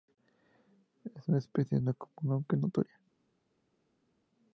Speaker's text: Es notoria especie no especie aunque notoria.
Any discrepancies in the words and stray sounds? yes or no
yes